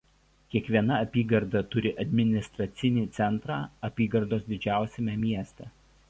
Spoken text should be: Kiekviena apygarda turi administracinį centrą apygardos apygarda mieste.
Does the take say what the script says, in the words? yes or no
no